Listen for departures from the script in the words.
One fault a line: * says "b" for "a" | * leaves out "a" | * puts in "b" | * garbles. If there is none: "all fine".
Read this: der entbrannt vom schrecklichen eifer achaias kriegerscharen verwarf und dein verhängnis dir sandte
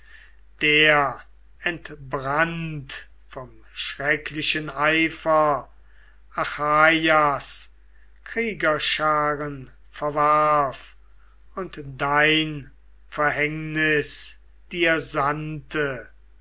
all fine